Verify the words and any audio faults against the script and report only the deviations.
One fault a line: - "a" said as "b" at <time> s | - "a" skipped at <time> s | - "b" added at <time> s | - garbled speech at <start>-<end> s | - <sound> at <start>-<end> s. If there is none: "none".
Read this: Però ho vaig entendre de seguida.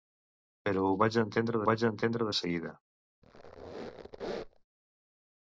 - "vaig entendre" added at 1.7 s
- squeak at 3.2-4.6 s